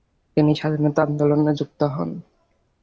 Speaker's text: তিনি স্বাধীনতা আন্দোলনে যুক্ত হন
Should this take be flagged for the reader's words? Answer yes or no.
no